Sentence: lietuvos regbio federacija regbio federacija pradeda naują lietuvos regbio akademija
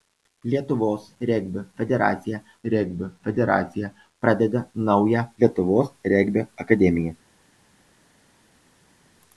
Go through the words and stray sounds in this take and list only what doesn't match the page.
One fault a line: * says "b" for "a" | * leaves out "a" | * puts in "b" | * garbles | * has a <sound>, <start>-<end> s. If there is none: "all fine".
all fine